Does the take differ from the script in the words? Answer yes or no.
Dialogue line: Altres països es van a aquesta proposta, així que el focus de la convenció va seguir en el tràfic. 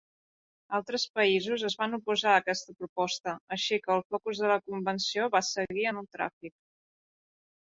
yes